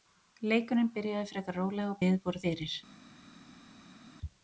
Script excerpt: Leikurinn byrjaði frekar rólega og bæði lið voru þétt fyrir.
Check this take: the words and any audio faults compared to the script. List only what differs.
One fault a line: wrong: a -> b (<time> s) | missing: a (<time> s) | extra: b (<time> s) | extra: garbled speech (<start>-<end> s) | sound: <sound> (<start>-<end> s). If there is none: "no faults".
missing: bæði (2.0 s)
missing: þétt (2.4 s)